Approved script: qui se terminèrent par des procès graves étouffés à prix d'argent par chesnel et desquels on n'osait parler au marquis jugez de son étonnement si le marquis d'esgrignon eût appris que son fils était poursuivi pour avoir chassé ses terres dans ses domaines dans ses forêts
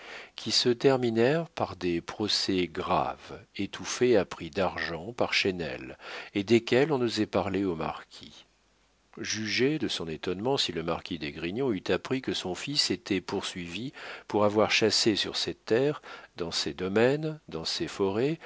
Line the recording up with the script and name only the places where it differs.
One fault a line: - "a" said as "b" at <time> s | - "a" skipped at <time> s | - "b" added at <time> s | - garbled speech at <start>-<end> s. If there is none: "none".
- "sur" added at 15.2 s